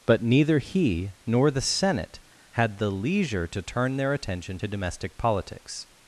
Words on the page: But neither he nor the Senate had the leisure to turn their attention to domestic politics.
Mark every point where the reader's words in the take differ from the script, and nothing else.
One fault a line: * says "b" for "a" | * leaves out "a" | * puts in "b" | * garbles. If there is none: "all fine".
all fine